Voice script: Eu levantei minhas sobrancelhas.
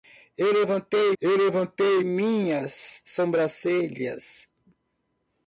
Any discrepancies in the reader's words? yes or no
yes